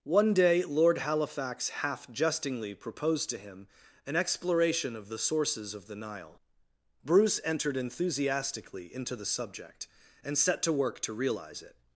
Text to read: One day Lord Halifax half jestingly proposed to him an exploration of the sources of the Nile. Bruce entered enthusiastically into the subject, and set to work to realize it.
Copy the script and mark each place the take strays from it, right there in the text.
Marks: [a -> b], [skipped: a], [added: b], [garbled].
One day Lord Halifax half jestingly proposed to him an exploration of the sources of the Nile. Bruce entered enthusiastically into the subject, and set to work to realize it.